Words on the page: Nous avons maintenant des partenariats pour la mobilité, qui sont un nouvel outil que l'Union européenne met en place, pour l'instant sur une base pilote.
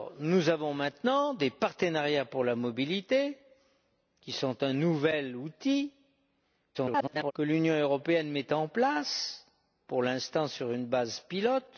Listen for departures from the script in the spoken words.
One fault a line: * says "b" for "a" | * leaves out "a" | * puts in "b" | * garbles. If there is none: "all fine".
* garbles